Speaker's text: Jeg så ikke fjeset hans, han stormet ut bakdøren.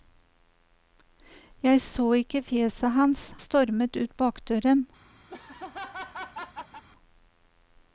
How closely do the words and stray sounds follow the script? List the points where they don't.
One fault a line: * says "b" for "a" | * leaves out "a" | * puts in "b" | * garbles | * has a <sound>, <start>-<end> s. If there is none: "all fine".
* leaves out "han"
* has a laugh, 5.3-6.8 s